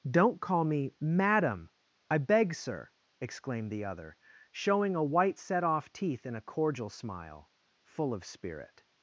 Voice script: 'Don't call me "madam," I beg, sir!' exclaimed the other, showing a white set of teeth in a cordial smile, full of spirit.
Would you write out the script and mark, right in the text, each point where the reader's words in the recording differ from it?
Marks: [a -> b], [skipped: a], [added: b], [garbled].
'Don't call me "madam," I beg, sir!' exclaimed the other, showing a white set [of -> off] teeth in a cordial smile, full of spirit.